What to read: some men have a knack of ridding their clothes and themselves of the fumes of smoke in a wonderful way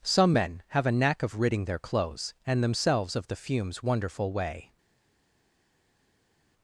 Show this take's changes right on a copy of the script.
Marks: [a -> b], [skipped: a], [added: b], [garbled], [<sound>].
some men have a knack of ridding their clothes and themselves of the fumes [skipped: of smoke in a] wonderful way